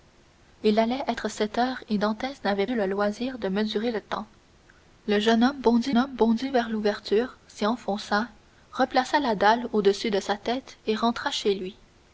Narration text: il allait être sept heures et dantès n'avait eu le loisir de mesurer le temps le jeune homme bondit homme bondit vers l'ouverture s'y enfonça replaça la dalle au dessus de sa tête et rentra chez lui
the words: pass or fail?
pass